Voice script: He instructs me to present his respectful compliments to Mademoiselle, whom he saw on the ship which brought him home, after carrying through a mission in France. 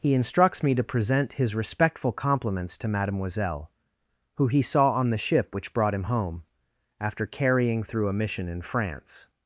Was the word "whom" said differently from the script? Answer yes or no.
yes